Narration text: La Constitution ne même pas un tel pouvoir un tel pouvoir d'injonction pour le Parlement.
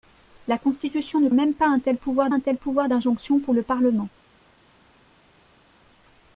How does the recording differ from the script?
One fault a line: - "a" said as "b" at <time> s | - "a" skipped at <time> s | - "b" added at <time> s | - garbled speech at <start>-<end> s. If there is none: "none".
none